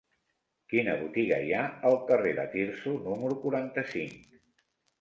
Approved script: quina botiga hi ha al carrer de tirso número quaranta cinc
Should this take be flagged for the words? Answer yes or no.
no